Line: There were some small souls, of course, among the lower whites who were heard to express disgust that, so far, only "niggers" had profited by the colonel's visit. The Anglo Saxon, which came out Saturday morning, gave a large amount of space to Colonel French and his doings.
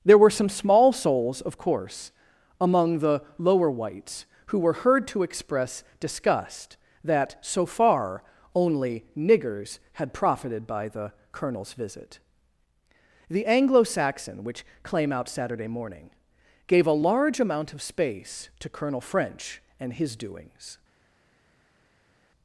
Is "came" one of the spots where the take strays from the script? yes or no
yes